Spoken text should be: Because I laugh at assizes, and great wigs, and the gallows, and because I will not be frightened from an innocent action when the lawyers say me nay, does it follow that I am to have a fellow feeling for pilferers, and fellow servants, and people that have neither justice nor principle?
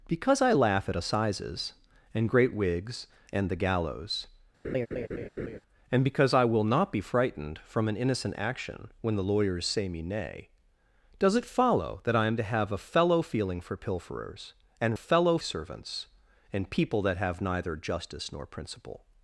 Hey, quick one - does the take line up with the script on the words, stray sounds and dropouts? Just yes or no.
no